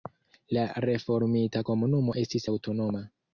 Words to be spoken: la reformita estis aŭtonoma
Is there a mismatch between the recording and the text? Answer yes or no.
yes